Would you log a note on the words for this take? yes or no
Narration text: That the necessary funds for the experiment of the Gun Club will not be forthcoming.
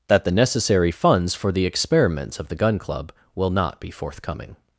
yes